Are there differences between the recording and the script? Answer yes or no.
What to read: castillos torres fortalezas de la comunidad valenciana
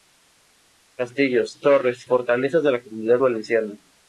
no